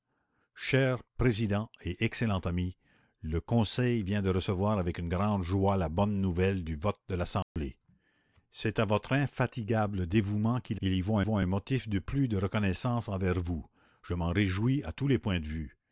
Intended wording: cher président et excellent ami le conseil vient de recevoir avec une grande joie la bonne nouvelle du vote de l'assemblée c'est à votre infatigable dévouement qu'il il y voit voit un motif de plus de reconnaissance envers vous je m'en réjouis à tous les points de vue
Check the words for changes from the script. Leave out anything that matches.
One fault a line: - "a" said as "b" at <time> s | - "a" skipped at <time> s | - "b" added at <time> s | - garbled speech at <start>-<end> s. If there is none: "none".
none